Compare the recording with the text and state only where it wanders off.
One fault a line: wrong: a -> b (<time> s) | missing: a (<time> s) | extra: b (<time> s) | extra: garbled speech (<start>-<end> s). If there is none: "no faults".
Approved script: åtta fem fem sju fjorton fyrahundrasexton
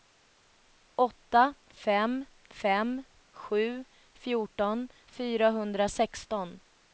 no faults